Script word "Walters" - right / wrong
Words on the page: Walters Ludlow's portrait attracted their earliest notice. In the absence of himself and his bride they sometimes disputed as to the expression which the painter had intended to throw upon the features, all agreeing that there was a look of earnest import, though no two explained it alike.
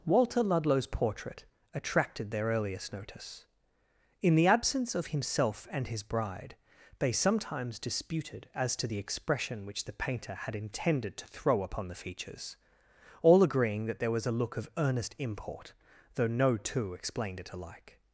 wrong